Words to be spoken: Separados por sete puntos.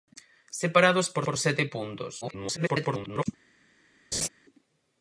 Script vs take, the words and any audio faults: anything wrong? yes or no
yes